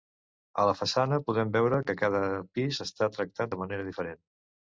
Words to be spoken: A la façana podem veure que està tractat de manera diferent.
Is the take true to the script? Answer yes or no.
no